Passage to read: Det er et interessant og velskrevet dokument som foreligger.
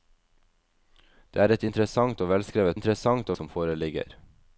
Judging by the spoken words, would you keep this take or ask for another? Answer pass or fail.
fail